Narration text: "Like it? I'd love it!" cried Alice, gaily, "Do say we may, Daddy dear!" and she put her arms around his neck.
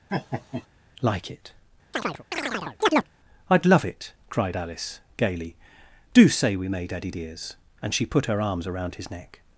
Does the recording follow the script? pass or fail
fail